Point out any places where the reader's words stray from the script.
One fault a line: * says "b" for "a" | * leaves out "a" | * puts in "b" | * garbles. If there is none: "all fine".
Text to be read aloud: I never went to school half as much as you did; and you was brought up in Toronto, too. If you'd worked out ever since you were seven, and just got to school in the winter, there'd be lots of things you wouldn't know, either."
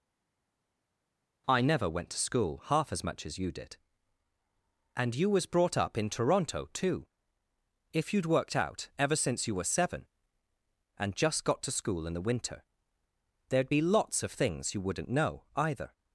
all fine